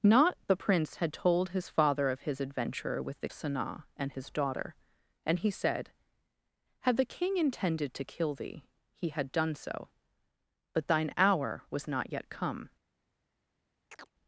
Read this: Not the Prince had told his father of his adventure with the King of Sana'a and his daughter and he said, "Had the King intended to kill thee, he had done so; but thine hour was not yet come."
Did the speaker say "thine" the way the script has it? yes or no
yes